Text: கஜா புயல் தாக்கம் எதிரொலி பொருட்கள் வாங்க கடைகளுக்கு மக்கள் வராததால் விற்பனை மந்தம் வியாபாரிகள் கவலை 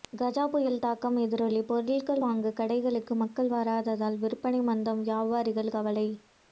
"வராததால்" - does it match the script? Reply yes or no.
yes